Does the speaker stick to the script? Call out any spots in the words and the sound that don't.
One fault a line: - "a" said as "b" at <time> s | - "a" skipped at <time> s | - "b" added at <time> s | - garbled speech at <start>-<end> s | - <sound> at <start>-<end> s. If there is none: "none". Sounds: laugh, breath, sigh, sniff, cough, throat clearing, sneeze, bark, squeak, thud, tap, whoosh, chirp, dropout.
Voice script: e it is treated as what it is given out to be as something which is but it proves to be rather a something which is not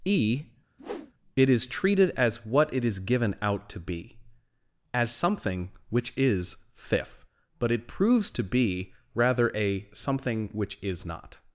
- whoosh at 0.8-1.1 s
- "fifth" added at 6.7 s